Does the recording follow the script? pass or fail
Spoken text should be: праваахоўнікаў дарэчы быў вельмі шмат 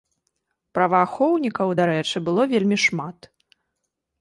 fail